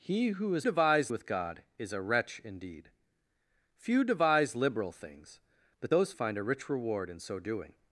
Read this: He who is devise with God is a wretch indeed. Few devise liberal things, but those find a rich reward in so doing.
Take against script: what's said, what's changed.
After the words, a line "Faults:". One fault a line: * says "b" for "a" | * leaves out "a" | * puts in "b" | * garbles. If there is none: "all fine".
He who is devise with God is a wretch indeed. Few devise liberal things, but those find a rich reward in so doing.
Faults:
all fine